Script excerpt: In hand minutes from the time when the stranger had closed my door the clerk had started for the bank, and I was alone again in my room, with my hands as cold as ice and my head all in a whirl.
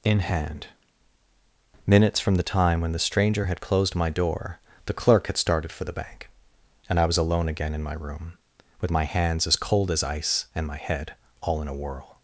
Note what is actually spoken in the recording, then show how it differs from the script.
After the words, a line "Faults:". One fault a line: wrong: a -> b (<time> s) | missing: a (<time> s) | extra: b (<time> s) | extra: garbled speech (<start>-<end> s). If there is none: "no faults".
In hand minutes from the time when the stranger had closed my door the clerk had started for the bank, and I was alone again in my room, with my hands as cold as ice and my head all in a whirl.
Faults:
no faults